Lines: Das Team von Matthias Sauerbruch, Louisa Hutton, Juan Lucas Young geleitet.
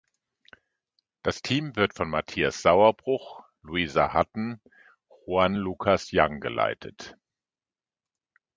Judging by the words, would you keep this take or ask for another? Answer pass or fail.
fail